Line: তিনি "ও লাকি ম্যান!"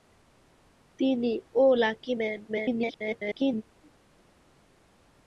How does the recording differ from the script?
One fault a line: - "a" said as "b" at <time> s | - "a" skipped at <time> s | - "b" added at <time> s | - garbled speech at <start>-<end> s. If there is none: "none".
- garbled speech at 2.5-3.6 s